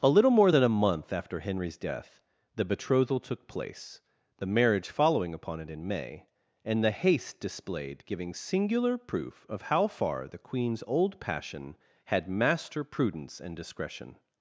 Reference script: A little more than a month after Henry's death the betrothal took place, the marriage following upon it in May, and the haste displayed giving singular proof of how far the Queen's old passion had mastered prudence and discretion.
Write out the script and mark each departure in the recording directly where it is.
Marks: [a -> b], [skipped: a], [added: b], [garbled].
A little more than a month after Henry's death the betrothal took place, the marriage following upon it in May, and the haste displayed giving singular proof of how far the Queen's old passion had [mastered -> master] prudence and discretion.